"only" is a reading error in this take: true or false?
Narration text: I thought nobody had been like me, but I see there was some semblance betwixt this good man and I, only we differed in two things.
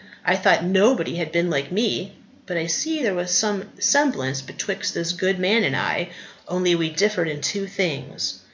false